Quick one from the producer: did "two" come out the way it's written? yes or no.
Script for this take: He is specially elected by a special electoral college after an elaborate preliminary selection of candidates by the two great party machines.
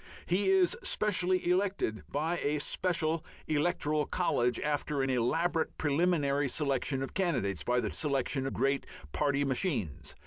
no